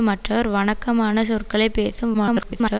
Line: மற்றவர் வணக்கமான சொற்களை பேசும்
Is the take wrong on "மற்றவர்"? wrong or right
right